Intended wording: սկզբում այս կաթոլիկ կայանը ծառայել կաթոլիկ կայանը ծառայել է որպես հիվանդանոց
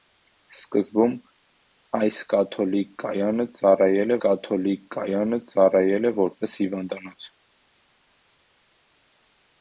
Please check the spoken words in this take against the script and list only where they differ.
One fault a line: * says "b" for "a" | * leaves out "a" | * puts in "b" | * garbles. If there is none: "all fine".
all fine